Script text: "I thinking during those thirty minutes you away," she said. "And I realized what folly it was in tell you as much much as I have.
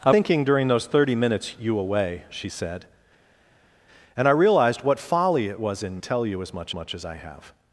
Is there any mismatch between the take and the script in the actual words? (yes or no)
no